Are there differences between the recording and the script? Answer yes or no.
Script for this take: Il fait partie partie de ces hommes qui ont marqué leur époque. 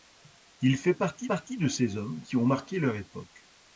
no